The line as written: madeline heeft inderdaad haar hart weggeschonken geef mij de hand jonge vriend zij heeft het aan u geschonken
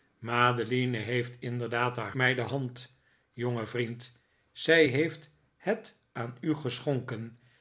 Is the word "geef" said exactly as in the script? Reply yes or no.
no